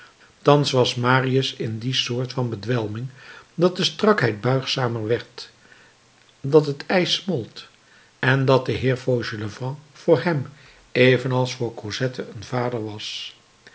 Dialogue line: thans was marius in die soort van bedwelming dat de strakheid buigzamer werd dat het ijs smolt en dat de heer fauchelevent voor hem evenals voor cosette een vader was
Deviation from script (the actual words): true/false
false